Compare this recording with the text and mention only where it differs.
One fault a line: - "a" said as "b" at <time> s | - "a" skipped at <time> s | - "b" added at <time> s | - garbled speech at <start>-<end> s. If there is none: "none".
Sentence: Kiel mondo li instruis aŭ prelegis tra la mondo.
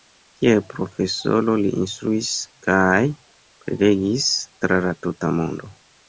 - "mondo" said as "profesoro" at 0.7 s
- "aŭ" said as "kaj" at 2.7 s
- "tuta" added at 5.1 s